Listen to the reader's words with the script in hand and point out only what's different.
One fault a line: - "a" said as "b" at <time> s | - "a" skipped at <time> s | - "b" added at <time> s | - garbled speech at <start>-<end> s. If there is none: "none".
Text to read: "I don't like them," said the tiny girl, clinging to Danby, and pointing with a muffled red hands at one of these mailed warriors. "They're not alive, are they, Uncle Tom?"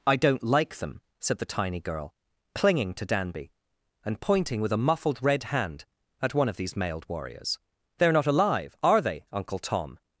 - "hands" said as "hand" at 5.5 s